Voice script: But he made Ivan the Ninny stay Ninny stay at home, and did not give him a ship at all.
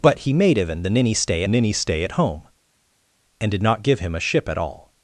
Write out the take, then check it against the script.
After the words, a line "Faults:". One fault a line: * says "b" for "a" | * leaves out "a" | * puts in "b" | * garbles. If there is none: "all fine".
But he made Ivan the Ninny stay Ninny stay at home, and did not give him a ship at all.
Faults:
all fine